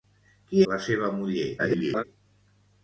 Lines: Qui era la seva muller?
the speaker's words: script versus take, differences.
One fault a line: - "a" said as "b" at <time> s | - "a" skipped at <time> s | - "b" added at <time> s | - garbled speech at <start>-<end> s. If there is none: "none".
- "era" skipped at 0.6 s
- garbled speech at 1.6-2.0 s